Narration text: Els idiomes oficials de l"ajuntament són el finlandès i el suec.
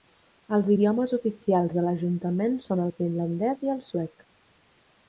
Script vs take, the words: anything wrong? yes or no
no